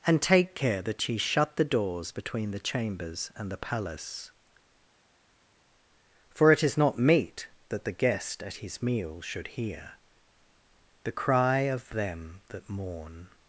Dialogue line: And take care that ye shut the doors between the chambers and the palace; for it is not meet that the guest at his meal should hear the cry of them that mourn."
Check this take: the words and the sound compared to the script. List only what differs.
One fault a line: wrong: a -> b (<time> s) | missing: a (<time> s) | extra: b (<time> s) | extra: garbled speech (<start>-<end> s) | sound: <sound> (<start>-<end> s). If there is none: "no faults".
no faults